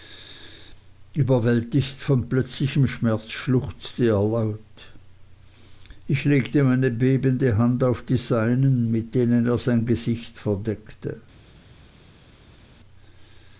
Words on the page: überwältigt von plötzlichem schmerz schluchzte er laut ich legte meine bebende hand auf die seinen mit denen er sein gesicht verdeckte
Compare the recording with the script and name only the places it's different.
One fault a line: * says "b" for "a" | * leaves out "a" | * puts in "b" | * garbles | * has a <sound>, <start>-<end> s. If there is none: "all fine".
all fine